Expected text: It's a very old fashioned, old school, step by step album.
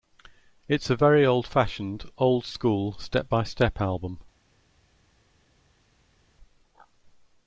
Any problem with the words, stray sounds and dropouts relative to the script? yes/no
no